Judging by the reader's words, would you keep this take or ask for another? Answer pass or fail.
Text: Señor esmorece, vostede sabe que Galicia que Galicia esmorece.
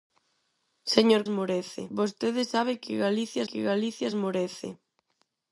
pass